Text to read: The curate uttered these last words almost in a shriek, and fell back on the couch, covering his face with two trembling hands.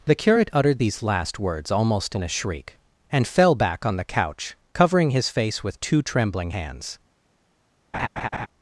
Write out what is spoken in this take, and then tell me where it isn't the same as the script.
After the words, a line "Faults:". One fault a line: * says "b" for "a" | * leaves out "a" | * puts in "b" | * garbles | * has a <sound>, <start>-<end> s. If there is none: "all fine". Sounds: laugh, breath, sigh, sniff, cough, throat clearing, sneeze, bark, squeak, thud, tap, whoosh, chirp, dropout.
The curate uttered these last words almost in a shriek, and fell back on the couch, covering his face with two trembling hands.
Faults:
* has a laugh, 7.9-8.5 s